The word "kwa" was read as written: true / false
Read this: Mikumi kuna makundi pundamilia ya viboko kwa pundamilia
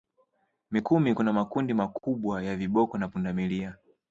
false